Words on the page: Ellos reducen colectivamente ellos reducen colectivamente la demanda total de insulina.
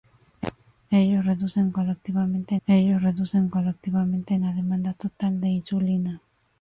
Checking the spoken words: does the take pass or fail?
pass